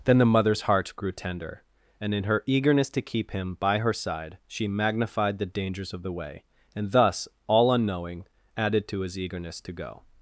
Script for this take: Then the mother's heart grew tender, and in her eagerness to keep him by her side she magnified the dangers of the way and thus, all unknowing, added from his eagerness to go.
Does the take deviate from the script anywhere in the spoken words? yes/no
yes